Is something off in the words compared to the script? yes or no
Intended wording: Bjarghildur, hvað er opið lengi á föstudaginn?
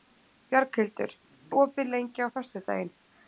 yes